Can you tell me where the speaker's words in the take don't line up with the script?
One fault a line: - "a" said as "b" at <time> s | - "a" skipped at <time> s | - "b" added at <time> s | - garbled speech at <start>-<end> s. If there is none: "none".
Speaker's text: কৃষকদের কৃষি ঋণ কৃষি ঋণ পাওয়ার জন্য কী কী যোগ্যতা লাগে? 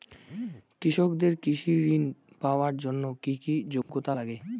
- "কৃষি ঋণ" skipped at 2.0 s